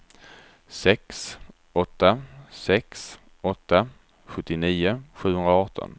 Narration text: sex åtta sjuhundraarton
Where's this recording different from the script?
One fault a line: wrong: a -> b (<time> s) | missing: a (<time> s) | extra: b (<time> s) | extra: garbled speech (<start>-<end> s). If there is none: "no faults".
extra: sex åtta sjuttionio (2.5 s)